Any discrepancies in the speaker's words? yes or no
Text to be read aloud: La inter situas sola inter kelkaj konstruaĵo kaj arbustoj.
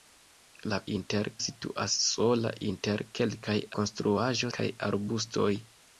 no